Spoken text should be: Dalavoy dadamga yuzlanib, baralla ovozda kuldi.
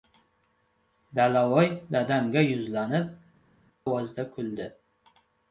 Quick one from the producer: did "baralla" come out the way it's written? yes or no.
no